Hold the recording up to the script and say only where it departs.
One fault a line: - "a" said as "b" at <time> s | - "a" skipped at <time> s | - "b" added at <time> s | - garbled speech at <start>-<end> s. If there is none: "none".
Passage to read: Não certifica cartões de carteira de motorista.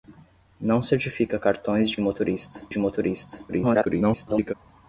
- "carteira" said as "motorista" at 2.0 s
- garbled speech at 3.5-4.5 s